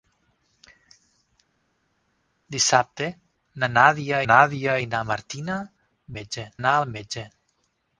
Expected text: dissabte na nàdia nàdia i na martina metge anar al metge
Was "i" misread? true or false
false